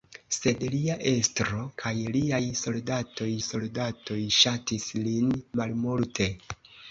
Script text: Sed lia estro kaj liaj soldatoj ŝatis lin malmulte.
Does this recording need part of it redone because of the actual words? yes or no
yes